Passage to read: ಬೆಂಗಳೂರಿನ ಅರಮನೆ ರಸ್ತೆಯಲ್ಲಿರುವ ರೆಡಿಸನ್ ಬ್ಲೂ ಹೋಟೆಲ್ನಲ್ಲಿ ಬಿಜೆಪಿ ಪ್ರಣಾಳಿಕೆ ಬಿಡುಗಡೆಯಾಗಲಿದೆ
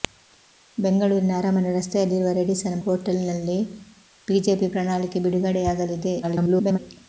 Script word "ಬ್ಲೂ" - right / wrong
wrong